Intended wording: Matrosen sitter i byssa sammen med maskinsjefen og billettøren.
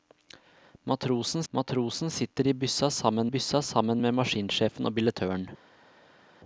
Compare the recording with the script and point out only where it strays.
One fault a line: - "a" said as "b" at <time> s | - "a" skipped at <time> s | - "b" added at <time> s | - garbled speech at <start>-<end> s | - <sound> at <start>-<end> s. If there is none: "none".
- "matrosen" added at 1.5 s
- "byssa sammen" added at 3.3 s